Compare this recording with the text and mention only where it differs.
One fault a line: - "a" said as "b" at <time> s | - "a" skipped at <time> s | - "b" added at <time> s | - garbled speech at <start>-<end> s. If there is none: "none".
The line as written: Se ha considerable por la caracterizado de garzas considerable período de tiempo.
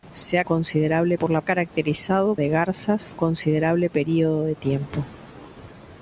none